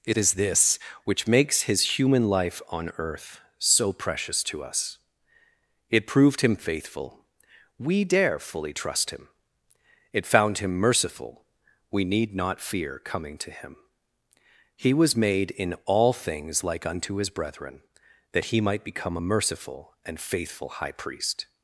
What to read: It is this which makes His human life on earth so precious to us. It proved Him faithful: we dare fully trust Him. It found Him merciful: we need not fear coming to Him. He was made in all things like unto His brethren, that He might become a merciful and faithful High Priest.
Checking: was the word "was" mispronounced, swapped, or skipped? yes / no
no